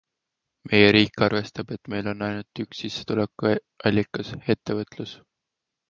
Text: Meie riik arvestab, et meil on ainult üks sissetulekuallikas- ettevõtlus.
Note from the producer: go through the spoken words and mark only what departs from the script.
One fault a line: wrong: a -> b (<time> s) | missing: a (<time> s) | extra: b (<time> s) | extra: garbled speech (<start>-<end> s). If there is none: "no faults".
no faults